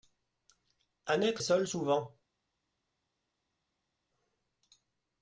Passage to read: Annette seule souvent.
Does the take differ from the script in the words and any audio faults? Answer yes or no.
no